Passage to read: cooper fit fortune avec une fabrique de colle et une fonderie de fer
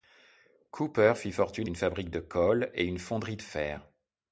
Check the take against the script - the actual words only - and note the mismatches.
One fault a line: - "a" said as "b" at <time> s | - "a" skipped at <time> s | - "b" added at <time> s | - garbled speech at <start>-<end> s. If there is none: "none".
- "avec" skipped at 1.7 s